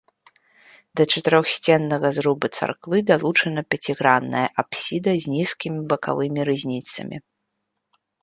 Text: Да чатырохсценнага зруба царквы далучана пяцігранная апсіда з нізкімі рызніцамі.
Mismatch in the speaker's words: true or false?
true